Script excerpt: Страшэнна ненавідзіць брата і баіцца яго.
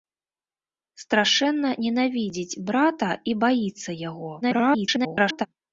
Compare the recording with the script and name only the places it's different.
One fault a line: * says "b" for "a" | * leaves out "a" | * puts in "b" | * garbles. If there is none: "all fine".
* garbles